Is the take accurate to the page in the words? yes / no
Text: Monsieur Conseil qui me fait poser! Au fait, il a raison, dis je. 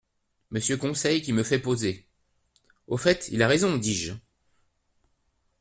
yes